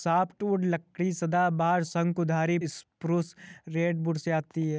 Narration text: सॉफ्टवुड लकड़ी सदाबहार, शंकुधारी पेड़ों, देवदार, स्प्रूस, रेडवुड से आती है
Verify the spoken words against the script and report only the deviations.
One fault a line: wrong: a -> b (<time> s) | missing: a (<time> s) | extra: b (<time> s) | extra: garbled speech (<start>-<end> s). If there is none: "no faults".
missing: पेड़ों देवदार (2.6 s)